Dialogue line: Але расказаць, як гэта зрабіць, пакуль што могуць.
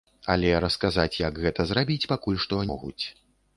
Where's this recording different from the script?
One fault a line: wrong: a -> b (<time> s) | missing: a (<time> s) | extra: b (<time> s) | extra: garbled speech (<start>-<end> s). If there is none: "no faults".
no faults